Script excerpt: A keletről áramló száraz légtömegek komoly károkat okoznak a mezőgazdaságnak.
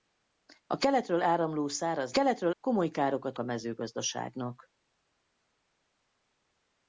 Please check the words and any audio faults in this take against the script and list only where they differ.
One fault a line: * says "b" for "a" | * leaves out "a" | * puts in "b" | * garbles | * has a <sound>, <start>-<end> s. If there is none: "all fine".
* says "keletről" for "légtömegek"
* leaves out "okoznak"